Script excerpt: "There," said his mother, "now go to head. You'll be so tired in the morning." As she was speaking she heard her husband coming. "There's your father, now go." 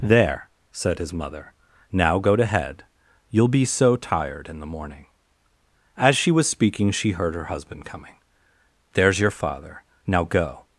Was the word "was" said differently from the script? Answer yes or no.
no